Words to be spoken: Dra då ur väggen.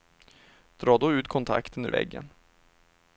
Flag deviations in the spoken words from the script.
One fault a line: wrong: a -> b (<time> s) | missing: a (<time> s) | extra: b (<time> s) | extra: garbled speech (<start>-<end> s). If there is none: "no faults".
extra: ut kontakten (1.1 s)